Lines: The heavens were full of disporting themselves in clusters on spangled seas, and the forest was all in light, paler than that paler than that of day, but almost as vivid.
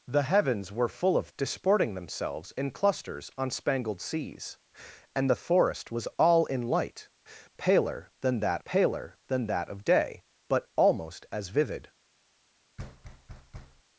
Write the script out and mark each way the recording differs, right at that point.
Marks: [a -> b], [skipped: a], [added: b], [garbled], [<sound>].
The heavens were full of disporting themselves in clusters on spangled seas, and the forest was all in light, paler than that paler than that of day, but almost as vivid. [thud]